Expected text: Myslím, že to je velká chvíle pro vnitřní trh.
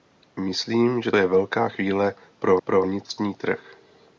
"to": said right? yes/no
no